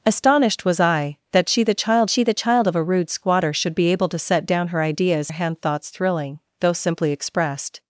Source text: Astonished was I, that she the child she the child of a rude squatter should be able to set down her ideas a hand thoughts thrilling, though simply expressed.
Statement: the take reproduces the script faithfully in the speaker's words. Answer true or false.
true